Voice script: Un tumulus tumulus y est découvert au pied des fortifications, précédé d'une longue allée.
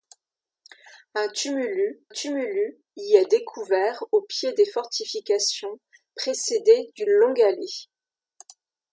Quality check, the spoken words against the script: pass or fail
pass